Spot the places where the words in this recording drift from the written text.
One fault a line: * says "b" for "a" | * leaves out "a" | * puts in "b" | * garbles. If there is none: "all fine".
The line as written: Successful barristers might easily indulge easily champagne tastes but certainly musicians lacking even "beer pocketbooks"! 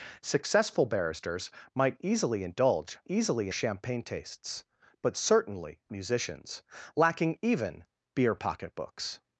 all fine